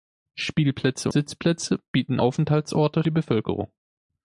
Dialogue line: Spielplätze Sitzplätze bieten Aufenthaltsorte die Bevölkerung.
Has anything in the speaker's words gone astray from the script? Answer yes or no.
no